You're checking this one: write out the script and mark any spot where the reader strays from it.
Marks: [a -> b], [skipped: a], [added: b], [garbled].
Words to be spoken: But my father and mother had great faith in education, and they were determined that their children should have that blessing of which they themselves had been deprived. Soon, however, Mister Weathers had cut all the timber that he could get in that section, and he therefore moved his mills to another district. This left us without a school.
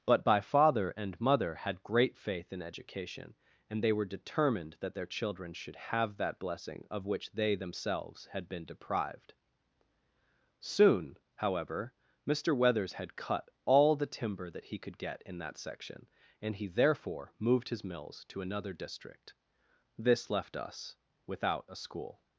But [my -> by] father and mother had great faith in education, and they were determined that their children should have that blessing of which they themselves had been deprived. Soon, however, Mister Weathers had cut all the timber that he could get in that section, and he therefore moved his mills to another district. This left us without a school.